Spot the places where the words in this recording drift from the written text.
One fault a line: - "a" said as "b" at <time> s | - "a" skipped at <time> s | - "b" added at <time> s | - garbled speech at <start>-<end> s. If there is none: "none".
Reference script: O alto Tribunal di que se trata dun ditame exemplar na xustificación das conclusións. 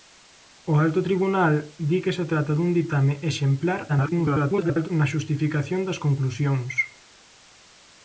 - garbled speech at 3.9-4.9 s